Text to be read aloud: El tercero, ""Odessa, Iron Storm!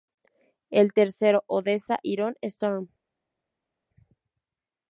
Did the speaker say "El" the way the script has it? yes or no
yes